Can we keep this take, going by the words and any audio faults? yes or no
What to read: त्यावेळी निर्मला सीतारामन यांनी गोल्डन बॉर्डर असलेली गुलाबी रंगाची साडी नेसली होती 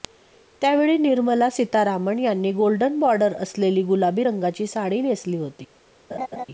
no